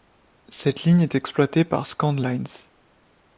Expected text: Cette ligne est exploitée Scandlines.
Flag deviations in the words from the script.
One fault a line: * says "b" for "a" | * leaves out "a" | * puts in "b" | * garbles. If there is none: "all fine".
* puts in "par"